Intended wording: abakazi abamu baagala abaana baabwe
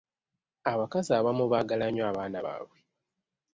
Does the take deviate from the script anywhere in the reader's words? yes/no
yes